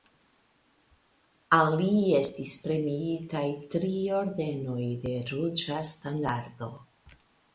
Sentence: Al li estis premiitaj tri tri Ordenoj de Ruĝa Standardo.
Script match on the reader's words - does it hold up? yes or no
no